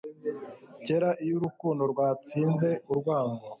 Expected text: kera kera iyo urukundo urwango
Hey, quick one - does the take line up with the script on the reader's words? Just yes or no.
no